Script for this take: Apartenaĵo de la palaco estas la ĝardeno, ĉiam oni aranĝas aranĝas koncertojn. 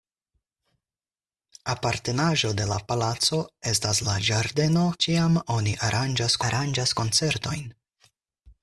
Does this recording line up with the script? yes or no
yes